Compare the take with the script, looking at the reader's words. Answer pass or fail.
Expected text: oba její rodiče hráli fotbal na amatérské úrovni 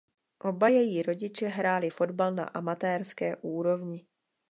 pass